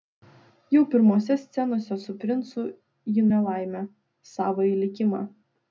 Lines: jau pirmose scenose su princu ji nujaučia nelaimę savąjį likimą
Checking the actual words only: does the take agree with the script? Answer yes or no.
no